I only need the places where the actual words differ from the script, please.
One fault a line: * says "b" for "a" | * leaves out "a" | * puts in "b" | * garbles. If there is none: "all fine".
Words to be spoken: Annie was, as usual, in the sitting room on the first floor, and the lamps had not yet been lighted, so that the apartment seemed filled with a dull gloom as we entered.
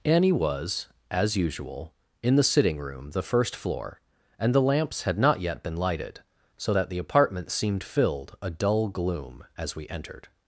* leaves out "on"
* leaves out "with"